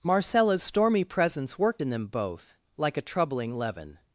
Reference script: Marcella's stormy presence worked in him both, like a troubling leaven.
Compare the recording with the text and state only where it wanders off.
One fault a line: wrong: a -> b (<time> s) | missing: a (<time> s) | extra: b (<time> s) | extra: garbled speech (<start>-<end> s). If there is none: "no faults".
wrong: him -> them (1.9 s)